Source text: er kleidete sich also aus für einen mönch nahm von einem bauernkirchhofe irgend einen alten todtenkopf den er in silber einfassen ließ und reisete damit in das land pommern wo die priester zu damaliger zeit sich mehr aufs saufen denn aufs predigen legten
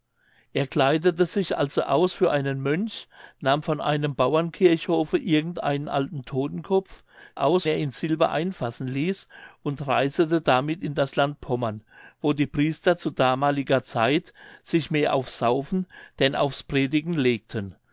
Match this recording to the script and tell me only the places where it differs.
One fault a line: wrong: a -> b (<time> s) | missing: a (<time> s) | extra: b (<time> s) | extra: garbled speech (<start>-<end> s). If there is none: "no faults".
wrong: den -> aus (7.3 s)